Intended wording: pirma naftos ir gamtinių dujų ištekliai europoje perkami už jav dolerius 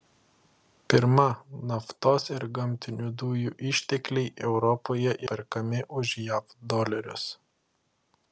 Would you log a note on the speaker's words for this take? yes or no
no